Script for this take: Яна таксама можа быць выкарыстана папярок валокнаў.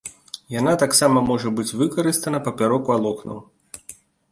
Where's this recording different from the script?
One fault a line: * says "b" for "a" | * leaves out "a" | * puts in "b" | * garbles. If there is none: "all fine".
all fine